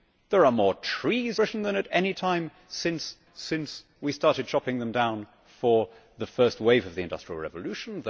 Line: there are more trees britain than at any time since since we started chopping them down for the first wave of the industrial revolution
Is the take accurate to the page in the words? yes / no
yes